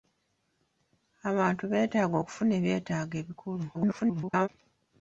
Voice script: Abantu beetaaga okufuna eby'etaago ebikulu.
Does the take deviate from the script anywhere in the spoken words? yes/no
yes